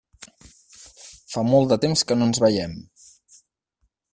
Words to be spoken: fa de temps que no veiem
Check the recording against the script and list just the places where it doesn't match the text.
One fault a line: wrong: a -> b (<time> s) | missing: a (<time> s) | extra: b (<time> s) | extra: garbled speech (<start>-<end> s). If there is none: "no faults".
extra: molt (1.5 s)
extra: ens (2.3 s)